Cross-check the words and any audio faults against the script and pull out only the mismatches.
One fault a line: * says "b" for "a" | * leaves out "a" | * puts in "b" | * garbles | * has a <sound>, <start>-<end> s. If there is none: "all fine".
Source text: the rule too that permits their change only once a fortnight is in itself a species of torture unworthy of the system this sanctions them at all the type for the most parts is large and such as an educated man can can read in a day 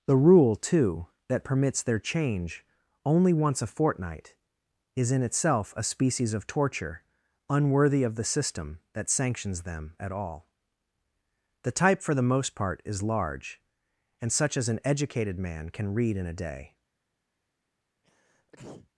* says "that" for "this"
* says "part" for "parts"
* leaves out "can"
* has a sneeze, 18.0-18.9 s